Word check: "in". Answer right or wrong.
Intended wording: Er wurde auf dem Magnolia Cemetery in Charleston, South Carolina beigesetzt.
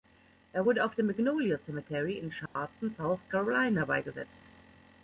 right